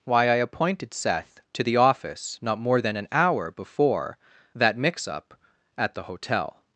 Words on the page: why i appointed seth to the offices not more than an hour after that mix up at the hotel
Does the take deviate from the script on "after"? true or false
true